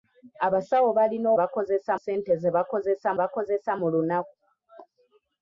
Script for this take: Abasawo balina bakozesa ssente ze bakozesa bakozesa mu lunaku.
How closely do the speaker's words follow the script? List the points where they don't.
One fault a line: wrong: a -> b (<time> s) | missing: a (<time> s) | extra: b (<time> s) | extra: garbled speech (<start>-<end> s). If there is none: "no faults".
no faults